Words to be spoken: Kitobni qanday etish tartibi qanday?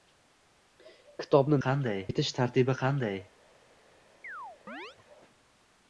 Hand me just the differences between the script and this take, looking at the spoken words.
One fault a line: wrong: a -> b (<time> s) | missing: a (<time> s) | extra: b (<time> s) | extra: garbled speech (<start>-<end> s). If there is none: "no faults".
no faults